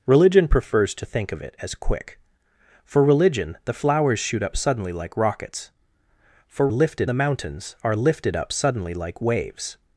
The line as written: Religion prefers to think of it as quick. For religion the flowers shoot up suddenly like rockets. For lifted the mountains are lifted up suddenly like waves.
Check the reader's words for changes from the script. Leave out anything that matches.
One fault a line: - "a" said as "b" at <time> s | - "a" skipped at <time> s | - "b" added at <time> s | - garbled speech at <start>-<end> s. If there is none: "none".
none